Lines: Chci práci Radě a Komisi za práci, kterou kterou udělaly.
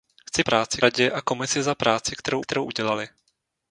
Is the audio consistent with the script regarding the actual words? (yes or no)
yes